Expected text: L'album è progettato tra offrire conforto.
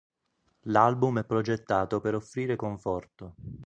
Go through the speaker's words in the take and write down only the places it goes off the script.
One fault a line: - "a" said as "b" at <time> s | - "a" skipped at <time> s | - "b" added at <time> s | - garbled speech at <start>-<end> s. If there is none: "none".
- "tra" said as "per" at 2.0 s